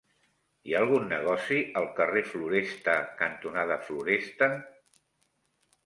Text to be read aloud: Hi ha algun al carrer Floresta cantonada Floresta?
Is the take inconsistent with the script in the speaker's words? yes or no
yes